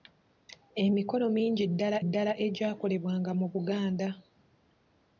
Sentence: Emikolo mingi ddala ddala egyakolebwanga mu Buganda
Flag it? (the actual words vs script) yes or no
no